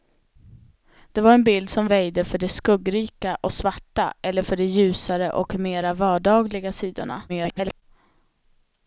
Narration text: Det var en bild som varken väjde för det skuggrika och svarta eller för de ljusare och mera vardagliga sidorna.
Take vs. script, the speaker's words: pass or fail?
fail